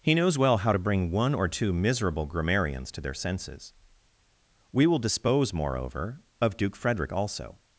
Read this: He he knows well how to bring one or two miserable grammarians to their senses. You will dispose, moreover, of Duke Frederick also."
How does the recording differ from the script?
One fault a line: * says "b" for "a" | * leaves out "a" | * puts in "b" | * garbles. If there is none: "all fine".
* leaves out "he"
* says "We" for "You"